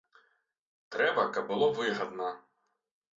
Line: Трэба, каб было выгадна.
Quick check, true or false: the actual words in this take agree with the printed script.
true